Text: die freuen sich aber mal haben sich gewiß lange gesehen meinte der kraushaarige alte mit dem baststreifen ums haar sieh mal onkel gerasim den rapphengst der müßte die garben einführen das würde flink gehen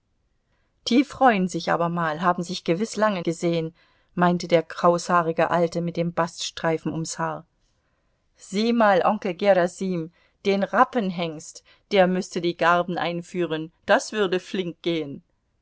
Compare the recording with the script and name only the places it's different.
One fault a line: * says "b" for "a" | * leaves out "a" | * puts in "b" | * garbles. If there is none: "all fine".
all fine